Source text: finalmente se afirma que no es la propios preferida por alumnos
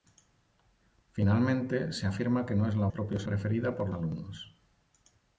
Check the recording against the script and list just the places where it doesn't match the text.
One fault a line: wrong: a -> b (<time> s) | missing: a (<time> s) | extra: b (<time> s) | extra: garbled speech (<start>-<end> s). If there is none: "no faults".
no faults